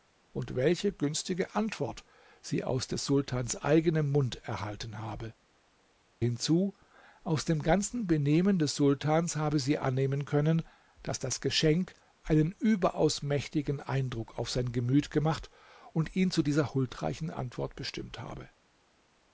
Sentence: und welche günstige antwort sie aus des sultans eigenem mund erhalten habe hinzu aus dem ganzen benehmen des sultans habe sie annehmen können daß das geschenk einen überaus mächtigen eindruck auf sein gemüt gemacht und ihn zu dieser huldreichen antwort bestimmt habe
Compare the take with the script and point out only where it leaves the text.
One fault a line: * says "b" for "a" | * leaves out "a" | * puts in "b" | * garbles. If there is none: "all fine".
all fine